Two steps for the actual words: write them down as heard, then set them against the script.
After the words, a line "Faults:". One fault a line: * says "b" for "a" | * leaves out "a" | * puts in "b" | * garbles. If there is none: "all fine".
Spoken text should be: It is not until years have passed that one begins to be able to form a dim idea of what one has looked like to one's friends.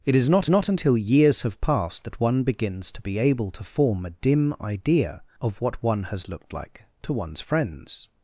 It is not not until years have passed that one begins to be able to form a dim idea of what one has looked like to one's friends.
Faults:
* puts in "not"